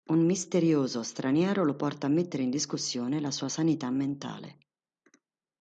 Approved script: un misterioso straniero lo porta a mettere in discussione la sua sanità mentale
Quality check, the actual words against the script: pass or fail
pass